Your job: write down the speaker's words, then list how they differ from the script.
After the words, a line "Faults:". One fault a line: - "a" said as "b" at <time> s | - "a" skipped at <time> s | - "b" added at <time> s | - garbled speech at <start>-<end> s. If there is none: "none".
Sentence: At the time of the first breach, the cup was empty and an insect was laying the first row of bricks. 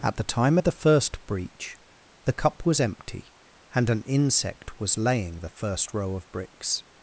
At the time of the first breach, the cup was empty and an insect was laying the first row of bricks.
Faults:
none